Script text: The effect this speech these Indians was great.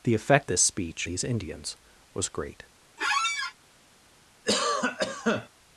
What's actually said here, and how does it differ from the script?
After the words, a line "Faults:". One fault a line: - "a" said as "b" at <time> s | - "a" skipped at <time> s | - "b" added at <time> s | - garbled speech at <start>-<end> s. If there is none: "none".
The effect this speech these Indians was great.
Faults:
none